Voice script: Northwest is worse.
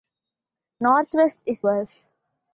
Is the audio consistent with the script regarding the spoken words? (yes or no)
yes